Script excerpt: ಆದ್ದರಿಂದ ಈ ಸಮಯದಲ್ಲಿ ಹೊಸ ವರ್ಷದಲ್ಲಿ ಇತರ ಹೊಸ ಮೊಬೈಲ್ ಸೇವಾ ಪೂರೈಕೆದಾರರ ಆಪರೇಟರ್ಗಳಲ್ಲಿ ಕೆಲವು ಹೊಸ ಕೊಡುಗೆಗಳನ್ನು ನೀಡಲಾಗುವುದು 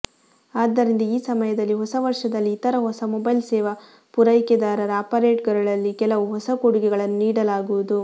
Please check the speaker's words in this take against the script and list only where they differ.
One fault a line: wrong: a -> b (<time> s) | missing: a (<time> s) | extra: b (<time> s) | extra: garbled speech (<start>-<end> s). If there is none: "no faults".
no faults